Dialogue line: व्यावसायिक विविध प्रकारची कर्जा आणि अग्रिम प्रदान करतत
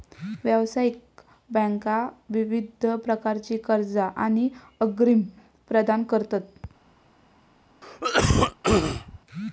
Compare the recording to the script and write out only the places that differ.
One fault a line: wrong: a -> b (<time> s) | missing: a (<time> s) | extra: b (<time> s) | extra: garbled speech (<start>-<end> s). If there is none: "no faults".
extra: बँका (1.5 s)